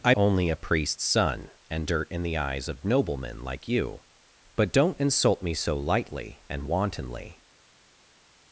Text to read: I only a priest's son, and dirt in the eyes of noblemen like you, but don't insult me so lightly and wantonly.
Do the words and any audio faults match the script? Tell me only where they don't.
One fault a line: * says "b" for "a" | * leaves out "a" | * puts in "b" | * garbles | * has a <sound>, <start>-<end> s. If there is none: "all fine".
all fine